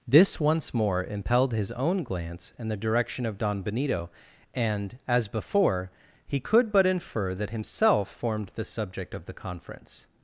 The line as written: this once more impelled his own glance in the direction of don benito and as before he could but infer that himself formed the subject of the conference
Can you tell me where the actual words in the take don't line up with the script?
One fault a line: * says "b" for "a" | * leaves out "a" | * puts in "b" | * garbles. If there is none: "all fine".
all fine